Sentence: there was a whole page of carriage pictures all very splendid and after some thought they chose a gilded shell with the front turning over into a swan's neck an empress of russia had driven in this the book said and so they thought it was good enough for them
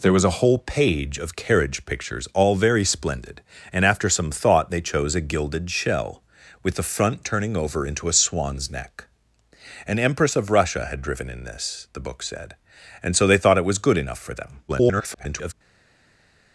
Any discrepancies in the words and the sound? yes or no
yes